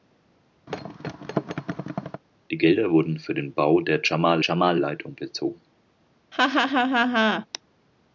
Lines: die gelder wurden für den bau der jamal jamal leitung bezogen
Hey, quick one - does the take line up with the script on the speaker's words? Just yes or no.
yes